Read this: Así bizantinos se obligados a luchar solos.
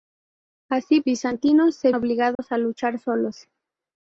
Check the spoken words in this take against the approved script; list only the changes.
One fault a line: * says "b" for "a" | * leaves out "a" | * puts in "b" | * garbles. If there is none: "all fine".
all fine